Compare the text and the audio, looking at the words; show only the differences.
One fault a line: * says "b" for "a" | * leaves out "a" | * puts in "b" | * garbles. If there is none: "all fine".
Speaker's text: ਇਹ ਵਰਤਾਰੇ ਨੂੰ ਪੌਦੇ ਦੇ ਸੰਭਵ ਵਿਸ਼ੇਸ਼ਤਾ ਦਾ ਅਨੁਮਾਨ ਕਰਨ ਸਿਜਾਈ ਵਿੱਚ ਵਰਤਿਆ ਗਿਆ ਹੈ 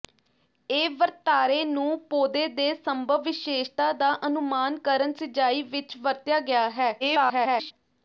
* garbles